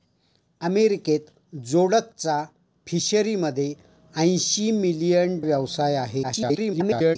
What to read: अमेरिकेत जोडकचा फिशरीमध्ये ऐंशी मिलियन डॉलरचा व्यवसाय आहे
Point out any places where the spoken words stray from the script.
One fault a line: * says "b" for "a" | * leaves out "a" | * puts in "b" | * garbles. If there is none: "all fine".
* leaves out "डॉलरचा"
* garbles